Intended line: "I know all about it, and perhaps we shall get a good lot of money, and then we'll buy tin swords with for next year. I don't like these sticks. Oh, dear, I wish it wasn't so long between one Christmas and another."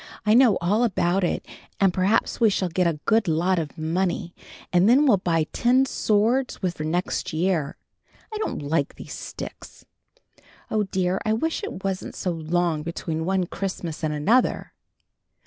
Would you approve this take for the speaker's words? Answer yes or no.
yes